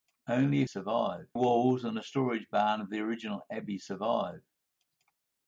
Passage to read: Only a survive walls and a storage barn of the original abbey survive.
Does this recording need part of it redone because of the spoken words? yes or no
no